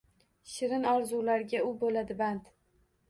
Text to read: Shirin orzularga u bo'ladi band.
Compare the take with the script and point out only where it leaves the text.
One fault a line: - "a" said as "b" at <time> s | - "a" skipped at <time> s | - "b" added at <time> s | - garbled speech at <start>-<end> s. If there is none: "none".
none